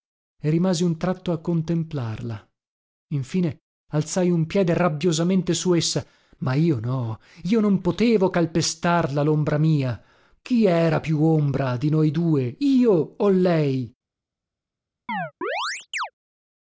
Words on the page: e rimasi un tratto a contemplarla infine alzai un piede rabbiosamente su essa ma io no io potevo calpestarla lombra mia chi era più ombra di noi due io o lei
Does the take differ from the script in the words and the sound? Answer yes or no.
yes